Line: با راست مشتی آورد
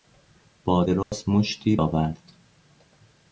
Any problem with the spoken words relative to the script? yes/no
no